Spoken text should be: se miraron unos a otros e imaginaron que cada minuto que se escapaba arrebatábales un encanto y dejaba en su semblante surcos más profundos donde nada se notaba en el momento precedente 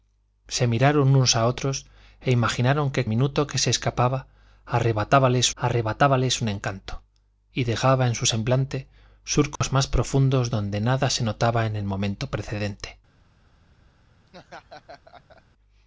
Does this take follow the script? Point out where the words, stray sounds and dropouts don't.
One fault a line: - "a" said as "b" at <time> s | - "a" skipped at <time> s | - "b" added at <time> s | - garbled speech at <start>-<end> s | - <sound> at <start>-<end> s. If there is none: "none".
- "cada" skipped at 3.0 s
- "arrebatábales" added at 5.6 s
- dropout at 9.6-9.6 s
- laugh at 14.3-15.4 s